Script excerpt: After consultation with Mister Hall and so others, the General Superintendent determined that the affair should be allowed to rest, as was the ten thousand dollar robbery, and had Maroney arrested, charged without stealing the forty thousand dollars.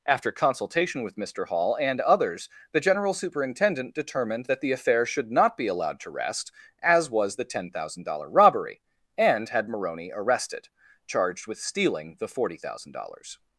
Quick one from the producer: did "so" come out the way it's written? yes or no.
no